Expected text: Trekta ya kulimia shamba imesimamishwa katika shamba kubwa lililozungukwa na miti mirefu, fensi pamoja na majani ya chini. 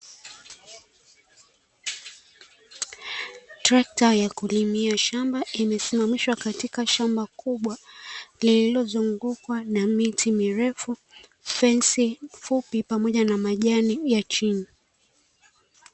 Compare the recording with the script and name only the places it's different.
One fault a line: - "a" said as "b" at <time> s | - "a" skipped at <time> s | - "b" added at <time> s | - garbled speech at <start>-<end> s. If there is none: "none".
- "fupi" added at 12.3 s